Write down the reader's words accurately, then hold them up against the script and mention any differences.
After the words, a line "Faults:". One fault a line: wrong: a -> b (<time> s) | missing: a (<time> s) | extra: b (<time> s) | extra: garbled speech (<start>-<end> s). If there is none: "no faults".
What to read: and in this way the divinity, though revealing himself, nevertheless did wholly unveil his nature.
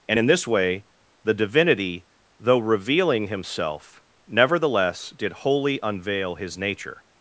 and in this way the divinity, though revealing himself, nevertheless did wholly unveil his nature.
Faults:
no faults